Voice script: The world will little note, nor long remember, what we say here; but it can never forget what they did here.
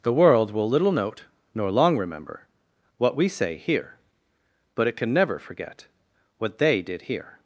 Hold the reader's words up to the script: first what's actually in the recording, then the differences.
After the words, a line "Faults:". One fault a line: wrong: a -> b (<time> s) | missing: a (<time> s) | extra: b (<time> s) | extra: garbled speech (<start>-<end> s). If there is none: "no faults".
The world will little note, nor long remember, what we say here; but it can never forget what they did here.
Faults:
no faults